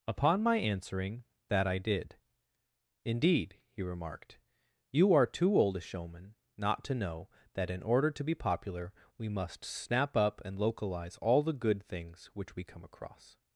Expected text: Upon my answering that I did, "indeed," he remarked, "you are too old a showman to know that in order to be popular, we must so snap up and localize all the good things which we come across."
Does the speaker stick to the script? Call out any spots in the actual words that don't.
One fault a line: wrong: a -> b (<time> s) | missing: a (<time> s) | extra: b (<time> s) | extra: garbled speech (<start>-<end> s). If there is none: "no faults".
extra: not (6.6 s)
missing: so (9.6 s)